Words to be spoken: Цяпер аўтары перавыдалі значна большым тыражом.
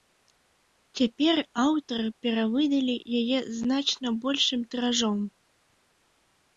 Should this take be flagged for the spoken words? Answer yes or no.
yes